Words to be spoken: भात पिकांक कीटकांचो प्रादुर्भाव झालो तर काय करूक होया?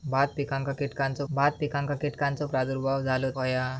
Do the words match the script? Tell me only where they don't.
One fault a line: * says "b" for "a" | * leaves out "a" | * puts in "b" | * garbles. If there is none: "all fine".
* says "भात पिकांक कीटकांचो प्रादुर्भाव झालो" for "प्रादुर्भाव झालो तर काय करूक"